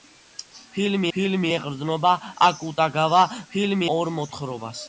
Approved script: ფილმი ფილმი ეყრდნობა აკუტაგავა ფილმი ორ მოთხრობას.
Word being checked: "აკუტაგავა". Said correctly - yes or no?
yes